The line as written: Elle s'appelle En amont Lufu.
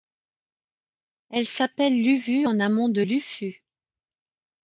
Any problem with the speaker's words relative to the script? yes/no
yes